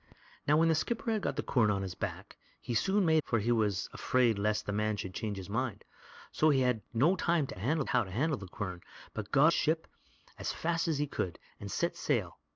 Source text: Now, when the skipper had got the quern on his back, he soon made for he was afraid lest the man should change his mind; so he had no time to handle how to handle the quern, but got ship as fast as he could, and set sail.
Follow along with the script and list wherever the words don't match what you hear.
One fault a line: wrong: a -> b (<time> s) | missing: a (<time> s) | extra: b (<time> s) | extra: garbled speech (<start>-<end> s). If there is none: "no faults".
no faults